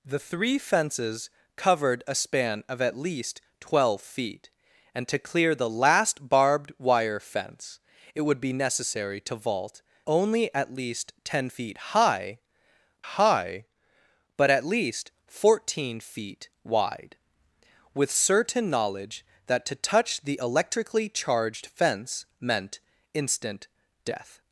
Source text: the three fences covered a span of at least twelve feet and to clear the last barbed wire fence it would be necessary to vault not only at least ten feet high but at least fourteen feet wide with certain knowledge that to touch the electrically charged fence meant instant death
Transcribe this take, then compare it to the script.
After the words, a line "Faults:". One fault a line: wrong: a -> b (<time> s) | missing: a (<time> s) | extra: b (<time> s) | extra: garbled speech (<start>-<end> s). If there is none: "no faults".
the three fences covered a span of at least twelve feet and to clear the last barbed wire fence it would be necessary to vault only at least ten feet high high but at least fourteen feet wide with certain knowledge that to touch the electrically charged fence meant instant death
Faults:
missing: not (9.8 s)
extra: high (13.1 s)